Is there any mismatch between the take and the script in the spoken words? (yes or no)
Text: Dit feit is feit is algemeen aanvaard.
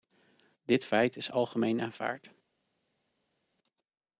yes